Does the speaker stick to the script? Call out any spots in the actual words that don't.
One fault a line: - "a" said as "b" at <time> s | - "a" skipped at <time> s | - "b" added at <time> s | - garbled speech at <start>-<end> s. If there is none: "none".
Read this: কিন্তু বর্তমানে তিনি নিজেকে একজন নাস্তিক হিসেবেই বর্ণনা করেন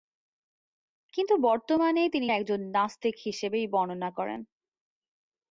- "নিজেকে" skipped at 2.3 s